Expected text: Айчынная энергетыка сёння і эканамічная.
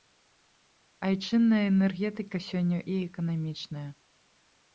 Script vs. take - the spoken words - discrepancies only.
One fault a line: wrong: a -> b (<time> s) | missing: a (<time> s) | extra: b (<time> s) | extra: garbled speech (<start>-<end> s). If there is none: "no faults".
no faults